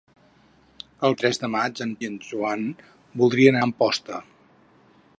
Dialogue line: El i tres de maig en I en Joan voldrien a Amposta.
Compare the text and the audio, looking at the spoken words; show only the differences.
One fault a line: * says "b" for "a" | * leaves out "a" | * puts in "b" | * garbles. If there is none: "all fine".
all fine